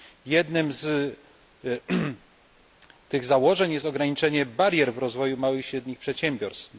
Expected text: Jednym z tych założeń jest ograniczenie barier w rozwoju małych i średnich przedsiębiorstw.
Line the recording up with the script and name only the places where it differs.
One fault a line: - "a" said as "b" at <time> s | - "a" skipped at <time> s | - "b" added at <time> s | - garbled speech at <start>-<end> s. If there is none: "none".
none